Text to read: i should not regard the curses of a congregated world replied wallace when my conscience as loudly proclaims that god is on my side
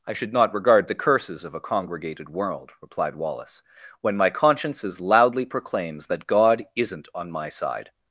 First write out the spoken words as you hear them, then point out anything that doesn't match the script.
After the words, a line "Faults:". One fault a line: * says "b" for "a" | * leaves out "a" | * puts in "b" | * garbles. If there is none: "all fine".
i should not regard the curses of a congregated world replied wallace when my conscience as loudly proclaims that god isn't on my side
Faults:
* says "isn't" for "is"